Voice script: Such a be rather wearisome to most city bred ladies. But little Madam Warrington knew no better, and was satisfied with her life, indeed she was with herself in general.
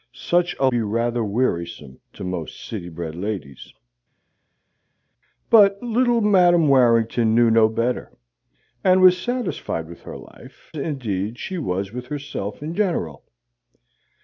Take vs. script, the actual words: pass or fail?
pass